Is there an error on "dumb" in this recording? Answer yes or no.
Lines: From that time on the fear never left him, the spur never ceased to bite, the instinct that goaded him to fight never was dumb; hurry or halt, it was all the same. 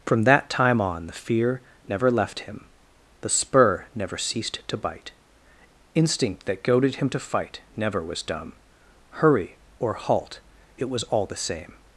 no